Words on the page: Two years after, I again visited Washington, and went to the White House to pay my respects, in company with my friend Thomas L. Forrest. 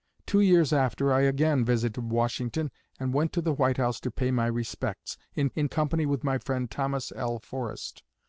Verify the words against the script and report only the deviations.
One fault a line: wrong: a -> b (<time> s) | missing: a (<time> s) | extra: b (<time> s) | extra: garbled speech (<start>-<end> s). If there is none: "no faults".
extra: in (5.5 s)